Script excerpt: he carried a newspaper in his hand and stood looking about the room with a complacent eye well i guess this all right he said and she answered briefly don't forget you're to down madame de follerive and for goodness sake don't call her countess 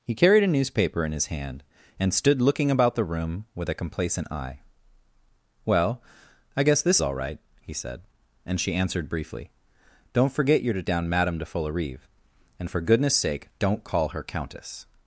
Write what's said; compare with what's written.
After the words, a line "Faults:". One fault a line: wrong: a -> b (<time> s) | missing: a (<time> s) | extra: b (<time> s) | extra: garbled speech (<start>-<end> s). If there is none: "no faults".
he carried a newspaper in his hand and stood looking about the room with a complacent eye well i guess this all right he said and she answered briefly don't forget you're to down madame de follerive and for goodness sake don't call her countess
Faults:
no faults